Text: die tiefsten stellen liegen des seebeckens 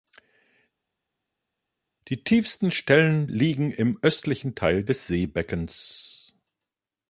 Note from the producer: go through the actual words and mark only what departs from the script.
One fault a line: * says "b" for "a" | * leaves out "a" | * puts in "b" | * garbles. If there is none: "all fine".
* puts in "im östlichen teil"